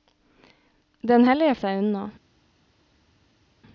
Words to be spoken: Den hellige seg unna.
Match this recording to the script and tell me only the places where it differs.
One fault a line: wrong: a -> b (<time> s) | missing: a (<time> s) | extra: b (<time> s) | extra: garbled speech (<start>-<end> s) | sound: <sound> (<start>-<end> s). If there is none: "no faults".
no faults